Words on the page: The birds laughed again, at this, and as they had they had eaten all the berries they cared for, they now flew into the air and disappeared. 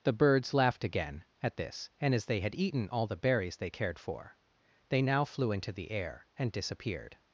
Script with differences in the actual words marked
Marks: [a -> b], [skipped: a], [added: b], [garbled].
The birds laughed again, at this, and as they had [skipped: they had] eaten all the berries they cared for, they now flew into the air and disappeared.